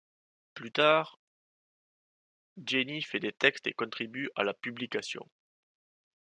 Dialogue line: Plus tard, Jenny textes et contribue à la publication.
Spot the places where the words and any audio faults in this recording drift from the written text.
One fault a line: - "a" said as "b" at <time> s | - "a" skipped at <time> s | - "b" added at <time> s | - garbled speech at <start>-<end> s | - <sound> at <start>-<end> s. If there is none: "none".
- "fait des" added at 3.0 s